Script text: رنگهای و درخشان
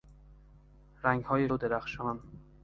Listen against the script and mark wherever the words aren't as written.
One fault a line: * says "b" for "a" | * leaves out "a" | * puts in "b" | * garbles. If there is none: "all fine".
all fine